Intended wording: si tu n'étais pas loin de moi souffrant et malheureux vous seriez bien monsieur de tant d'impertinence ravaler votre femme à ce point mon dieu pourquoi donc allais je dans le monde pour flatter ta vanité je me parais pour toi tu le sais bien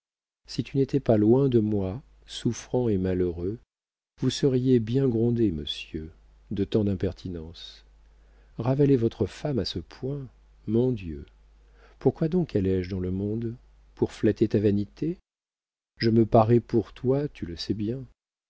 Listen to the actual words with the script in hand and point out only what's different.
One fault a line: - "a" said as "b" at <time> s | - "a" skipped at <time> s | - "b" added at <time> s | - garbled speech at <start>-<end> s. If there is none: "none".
- "grondé" added at 5.1 s